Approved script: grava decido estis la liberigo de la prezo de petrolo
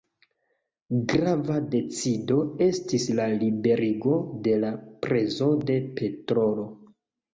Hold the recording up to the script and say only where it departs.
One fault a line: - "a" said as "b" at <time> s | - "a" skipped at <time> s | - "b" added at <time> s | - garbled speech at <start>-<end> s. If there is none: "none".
none